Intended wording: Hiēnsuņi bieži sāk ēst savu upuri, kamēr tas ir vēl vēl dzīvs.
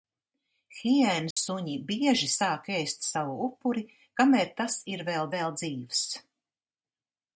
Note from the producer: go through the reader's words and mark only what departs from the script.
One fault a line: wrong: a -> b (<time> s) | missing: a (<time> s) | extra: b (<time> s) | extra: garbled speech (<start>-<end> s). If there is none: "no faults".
no faults